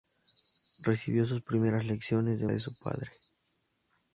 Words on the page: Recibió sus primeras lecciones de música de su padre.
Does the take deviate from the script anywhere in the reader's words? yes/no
yes